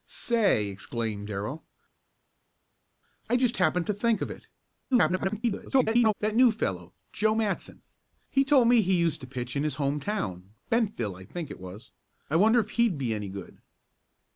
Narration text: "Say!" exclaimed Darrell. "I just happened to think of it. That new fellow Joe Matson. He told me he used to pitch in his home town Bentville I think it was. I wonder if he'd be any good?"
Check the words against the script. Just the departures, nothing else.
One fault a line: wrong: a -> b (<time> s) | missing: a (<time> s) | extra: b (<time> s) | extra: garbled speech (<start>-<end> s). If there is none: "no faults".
extra: garbled speech (4.9-6.1 s)